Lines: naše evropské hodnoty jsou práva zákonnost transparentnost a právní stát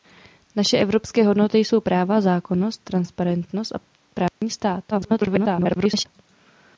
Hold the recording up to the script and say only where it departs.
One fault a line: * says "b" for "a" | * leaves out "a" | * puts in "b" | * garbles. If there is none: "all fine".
* garbles